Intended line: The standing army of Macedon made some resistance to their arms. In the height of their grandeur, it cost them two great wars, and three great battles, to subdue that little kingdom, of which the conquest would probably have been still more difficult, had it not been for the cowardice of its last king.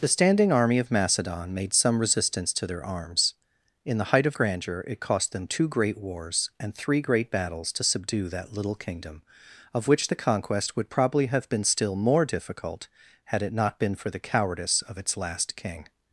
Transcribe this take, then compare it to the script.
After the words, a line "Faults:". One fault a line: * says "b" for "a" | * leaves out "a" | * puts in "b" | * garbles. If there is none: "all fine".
The standing army of Macedon made some resistance to their arms. In the height of grandeur, it cost them two great wars, and three great battles, to subdue that little kingdom, of which the conquest would probably have been still more difficult, had it not been for the cowardice of its last king.
Faults:
* leaves out "their"